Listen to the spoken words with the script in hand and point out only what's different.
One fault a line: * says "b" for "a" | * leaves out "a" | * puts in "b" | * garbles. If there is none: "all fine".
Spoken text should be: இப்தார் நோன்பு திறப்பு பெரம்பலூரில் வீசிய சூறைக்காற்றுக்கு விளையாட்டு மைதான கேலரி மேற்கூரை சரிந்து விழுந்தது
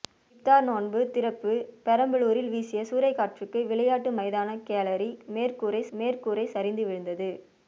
* puts in "மேற்கூரை"